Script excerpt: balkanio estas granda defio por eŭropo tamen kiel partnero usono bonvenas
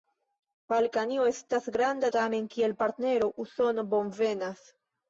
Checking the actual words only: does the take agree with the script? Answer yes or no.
no